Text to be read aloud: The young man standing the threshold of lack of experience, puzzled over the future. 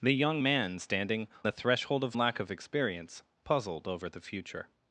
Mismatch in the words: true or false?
false